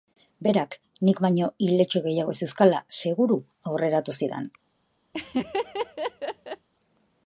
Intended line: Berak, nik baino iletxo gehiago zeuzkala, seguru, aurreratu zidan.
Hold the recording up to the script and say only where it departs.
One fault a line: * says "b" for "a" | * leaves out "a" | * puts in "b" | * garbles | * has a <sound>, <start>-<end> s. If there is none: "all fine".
* has a laugh, 5.1-6.7 s